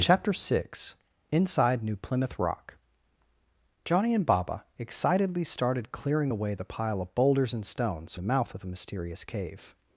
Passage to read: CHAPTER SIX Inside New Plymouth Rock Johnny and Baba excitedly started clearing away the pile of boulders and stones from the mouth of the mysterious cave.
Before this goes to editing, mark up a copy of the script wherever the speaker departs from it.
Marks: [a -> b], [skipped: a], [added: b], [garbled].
CHAPTER SIX Inside New Plymouth Rock Johnny and Baba excitedly started clearing away the pile of boulders and stones [skipped: from] the mouth of the mysterious cave.